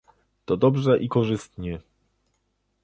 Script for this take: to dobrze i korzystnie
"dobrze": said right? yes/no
yes